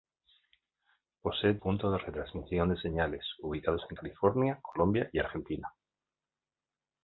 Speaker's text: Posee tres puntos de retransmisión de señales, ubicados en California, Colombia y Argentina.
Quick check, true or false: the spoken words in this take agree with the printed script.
false